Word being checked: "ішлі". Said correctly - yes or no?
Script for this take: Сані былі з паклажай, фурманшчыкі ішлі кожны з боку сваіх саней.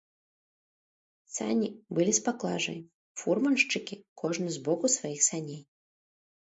no